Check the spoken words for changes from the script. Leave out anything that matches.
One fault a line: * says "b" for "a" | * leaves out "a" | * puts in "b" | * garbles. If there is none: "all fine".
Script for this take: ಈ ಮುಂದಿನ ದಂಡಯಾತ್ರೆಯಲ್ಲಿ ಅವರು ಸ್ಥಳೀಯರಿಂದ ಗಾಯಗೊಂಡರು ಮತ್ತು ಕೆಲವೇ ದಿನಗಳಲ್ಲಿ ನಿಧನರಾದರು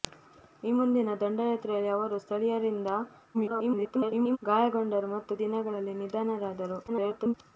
* garbles
* leaves out "ಕೆಲವೇ"
* garbles